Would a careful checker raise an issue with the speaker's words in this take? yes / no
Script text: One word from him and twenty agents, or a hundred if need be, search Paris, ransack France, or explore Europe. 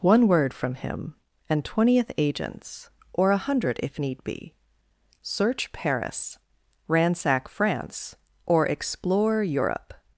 yes